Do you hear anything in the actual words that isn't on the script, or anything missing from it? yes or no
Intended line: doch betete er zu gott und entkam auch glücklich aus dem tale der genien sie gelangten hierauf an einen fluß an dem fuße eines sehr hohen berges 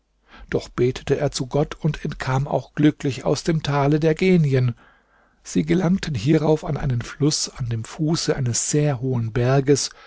no